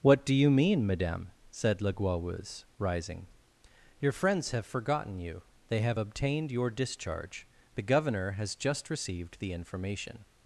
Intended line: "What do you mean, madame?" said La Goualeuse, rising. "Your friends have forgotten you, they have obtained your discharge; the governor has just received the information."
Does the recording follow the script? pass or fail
pass